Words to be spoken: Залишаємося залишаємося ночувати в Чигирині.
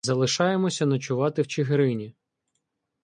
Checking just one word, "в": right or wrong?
right